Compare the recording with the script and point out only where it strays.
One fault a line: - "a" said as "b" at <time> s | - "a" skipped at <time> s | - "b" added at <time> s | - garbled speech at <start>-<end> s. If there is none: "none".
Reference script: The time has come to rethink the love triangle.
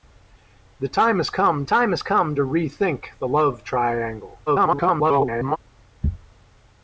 - "time has come" added at 1.6 s
- garbled speech at 4.5-5.6 s